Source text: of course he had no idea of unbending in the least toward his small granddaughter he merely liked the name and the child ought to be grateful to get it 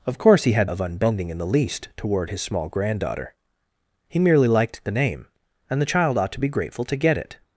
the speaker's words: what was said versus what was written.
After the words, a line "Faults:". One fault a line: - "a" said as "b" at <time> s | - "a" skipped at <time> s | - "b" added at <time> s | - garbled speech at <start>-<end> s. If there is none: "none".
of course he had of unbending in the least toward his small granddaughter he merely liked the name and the child ought to be grateful to get it
Faults:
- "no idea" skipped at 0.7 s